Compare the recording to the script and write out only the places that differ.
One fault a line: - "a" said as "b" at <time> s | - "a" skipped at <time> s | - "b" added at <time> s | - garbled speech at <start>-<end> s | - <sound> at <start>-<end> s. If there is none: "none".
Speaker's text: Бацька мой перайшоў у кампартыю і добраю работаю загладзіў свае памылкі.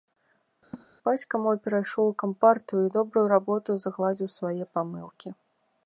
- laugh at 0.7-0.9 s